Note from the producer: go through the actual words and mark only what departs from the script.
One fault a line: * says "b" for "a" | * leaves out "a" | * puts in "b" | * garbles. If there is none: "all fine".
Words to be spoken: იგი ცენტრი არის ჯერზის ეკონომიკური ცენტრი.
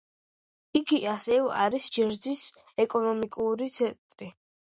* says "ასევე" for "ცენტრი"